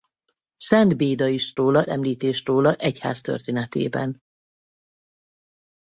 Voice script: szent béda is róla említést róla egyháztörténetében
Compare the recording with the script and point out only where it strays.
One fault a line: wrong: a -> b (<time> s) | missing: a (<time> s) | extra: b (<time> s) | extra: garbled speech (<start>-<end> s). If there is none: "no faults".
no faults